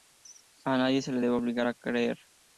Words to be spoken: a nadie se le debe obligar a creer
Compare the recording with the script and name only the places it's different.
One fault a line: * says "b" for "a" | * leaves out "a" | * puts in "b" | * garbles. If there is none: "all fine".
all fine